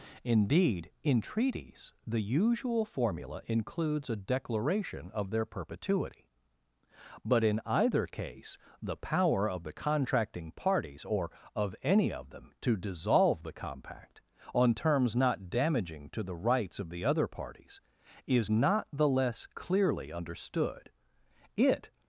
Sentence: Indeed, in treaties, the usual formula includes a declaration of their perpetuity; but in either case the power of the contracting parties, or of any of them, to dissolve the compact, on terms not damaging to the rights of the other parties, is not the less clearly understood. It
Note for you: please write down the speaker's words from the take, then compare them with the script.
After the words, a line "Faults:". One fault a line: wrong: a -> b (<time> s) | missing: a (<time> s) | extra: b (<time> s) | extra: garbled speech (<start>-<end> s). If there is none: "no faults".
Indeed, in treaties, the usual formula includes a declaration of their perpetuity; but in either case the power of the contracting parties, or of any of them, to dissolve the compact, on terms not damaging to the rights of the other parties, is not the less clearly understood. It
Faults:
no faults